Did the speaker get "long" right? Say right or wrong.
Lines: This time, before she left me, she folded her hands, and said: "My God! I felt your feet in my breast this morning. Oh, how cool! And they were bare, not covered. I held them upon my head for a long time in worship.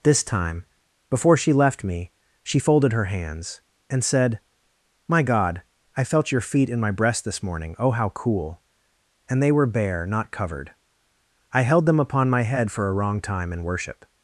wrong